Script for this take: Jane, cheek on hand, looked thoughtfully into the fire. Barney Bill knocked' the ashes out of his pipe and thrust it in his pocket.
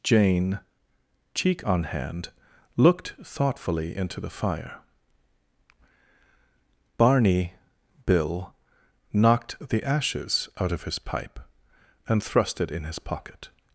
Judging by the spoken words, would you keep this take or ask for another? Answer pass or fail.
pass